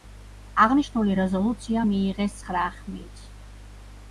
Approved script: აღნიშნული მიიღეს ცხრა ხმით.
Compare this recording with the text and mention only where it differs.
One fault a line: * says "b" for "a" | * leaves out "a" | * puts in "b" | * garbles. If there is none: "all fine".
* puts in "რეზოლუცია"